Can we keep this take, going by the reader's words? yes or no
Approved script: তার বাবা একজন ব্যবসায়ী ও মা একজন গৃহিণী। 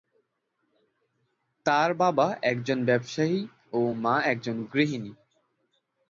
yes